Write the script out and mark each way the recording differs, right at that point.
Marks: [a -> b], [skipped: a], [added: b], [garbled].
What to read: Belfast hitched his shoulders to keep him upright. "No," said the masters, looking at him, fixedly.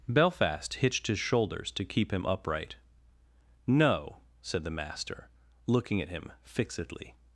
Belfast hitched his shoulders to keep him upright. "No," said the [masters, -> master] looking at him, fixedly.